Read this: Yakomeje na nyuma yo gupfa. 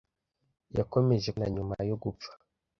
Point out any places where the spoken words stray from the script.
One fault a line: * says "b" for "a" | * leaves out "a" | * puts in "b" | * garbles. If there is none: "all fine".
all fine